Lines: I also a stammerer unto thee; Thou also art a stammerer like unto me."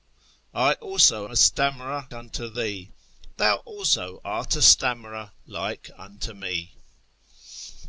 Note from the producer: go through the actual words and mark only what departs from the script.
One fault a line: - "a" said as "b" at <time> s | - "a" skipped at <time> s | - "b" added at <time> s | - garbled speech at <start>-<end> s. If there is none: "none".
none